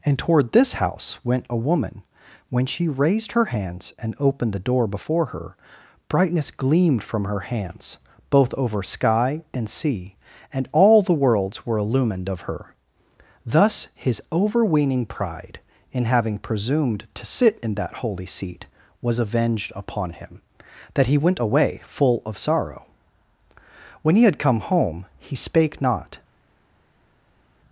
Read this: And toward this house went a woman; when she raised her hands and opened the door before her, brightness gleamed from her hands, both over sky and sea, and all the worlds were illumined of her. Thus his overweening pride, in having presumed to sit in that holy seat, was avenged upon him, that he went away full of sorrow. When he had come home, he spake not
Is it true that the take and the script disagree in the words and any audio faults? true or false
false